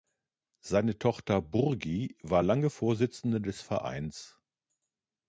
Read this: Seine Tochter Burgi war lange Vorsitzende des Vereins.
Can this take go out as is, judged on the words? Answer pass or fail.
pass